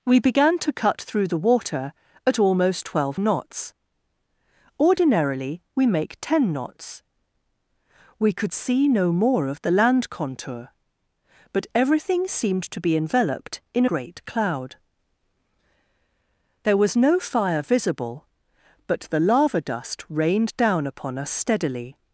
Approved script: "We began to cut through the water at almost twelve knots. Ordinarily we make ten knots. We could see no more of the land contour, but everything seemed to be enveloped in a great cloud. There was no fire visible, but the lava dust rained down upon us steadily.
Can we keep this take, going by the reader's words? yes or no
no